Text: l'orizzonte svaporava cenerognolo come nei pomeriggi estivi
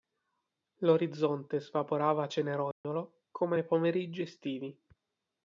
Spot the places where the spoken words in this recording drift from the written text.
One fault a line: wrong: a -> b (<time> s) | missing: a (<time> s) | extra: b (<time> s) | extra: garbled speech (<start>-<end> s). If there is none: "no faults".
no faults